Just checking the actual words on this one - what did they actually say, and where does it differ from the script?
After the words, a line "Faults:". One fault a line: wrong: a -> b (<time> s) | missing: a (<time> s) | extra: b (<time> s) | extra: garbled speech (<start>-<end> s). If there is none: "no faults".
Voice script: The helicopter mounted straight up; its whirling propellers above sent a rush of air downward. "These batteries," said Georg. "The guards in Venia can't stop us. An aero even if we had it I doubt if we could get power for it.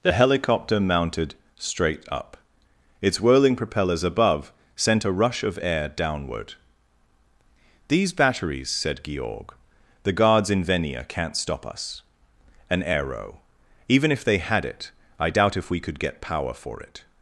The helicopter mounted straight up; its whirling propellers above sent a rush of air downward. "These batteries," said Georg. "The guards in Venia can't stop us. An aero even if they had it I doubt if we could get power for it.
Faults:
wrong: we -> they (14.2 s)